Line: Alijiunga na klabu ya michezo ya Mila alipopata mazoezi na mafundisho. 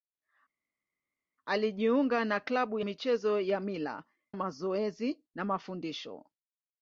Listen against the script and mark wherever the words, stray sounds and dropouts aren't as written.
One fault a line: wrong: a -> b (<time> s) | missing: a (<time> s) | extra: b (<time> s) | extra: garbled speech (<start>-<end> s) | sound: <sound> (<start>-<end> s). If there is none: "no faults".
missing: ya (2.8 s)
missing: alipopata (4.0 s)